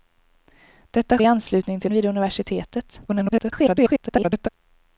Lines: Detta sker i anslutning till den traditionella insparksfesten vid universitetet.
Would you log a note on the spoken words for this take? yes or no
yes